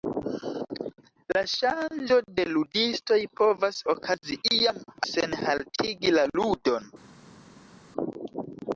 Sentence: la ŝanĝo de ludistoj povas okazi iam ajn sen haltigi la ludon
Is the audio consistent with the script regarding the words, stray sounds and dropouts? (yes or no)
no